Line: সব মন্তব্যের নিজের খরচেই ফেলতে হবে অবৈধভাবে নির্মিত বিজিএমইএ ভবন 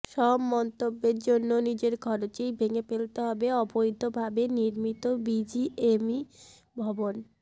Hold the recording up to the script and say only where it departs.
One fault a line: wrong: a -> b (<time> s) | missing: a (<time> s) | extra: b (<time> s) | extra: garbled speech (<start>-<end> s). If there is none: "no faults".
extra: জন্য (1.3 s)
extra: ভেঙে (2.6 s)